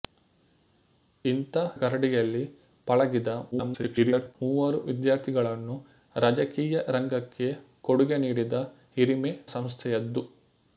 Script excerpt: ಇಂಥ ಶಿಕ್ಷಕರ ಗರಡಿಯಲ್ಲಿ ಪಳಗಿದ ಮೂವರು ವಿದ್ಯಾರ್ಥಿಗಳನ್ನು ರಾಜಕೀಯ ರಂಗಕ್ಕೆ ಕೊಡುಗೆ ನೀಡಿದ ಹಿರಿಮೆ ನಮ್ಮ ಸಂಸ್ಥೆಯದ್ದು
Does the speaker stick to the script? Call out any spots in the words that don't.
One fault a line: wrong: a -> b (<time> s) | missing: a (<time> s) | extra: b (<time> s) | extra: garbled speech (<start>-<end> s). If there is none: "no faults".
missing: ಶಿಕ್ಷಕರ (1.6 s)
extra: garbled speech (3.5-4.4 s)
missing: ನಮ್ಮ (9.3 s)